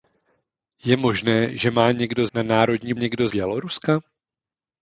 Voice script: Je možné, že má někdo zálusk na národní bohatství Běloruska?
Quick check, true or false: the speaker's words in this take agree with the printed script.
false